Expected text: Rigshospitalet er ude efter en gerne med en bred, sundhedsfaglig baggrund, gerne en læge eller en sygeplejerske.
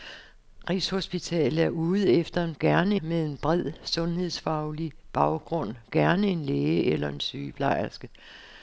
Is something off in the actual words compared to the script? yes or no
no